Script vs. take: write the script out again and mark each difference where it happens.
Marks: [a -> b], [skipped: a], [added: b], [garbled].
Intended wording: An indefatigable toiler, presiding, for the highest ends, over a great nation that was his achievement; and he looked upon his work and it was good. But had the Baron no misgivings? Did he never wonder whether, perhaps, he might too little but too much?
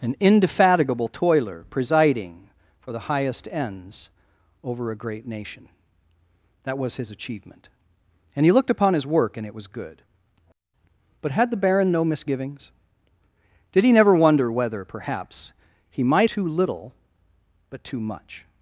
An indefatigable toiler, presiding, for the highest ends, over a great nation that was his achievement; and he looked upon his work and it was good. But had the Baron no misgivings? Did he never wonder whether, perhaps, he might too little but too much?